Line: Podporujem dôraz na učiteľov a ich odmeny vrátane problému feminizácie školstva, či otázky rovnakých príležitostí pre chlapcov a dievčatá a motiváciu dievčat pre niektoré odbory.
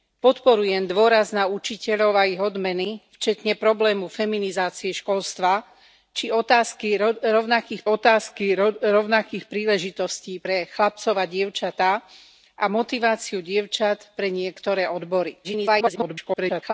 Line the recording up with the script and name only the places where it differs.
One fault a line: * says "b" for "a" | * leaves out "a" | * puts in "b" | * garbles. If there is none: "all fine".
* puts in "otázky rovnakých"
* garbles